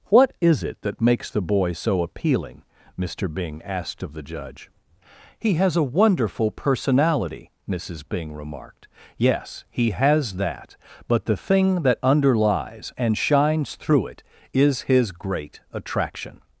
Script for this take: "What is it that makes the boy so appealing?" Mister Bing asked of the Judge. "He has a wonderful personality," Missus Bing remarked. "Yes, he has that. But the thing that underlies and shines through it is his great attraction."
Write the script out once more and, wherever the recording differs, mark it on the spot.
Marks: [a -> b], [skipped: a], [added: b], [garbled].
"What is it that makes the boy so appealing?" Mister Bing asked of the Judge. "He has a wonderful personality," Missus Bing remarked. "Yes, he has that. But the thing that underlies and shines through it is his great attraction."